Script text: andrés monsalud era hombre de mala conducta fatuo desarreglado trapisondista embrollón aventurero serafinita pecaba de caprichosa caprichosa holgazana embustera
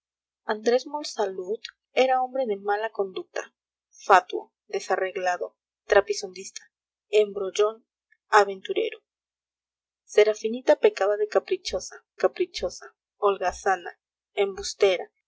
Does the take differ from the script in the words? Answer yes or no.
no